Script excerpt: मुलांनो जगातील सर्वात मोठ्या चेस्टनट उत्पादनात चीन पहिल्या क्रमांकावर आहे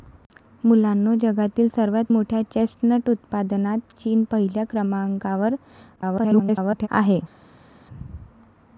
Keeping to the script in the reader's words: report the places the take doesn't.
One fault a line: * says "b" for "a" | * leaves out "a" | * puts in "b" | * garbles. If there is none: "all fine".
* garbles